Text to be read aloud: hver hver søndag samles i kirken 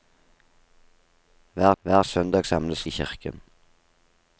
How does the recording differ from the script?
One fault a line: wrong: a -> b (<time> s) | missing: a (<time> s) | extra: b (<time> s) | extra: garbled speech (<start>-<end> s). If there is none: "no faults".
no faults